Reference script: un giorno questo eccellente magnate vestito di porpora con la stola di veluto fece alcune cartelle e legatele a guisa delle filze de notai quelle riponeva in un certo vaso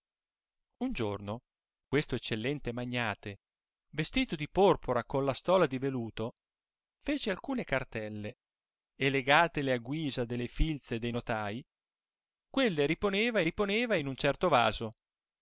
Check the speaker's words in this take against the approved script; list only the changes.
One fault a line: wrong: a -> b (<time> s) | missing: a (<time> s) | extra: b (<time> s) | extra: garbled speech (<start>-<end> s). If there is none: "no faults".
extra: riponeva (13.4 s)